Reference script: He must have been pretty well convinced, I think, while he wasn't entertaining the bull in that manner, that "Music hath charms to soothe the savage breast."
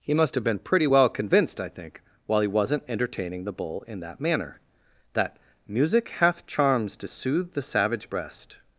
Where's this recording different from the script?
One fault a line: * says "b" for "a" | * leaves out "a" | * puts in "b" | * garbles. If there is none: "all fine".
all fine